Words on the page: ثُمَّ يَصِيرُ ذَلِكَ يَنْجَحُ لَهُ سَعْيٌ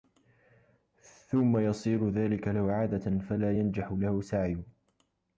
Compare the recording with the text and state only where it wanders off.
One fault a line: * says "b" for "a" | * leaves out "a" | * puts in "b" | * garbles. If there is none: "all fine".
* puts in "لَهُ عَادَةً فَلَا"